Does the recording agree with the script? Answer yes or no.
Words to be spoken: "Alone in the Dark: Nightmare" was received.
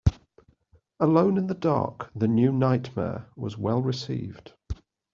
no